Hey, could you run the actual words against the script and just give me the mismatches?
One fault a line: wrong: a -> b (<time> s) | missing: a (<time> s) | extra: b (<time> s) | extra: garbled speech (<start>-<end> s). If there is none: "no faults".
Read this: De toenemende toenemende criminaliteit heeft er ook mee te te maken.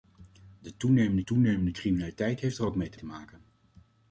no faults